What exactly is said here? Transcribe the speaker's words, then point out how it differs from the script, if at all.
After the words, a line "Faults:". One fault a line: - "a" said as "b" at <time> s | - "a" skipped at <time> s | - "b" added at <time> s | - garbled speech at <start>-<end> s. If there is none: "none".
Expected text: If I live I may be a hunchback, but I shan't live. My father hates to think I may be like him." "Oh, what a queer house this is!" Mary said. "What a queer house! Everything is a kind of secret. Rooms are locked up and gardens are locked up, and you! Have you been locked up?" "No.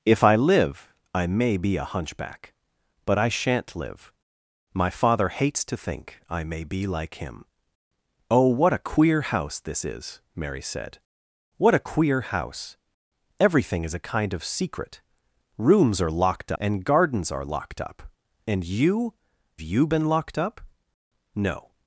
If I live I may be a hunchback, but I shan't live. My father hates to think I may be like him." "Oh, what a queer house this is!" Mary said. "What a queer house! Everything is a kind of secret. Rooms are locked and gardens are locked up, and you! You been locked up?" "No.
Faults:
- "up" skipped at 16.5 s
- "Have" skipped at 19.1 s